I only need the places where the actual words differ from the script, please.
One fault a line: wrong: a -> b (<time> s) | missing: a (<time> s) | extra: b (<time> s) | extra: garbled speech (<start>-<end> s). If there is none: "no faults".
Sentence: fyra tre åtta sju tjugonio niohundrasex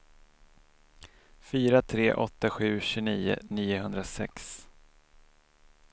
no faults